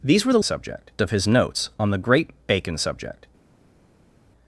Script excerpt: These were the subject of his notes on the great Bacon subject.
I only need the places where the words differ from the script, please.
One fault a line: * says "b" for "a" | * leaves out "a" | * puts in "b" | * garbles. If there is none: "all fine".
all fine